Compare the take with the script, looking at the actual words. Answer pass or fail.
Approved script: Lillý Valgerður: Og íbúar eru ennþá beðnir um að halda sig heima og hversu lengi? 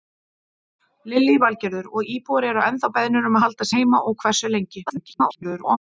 fail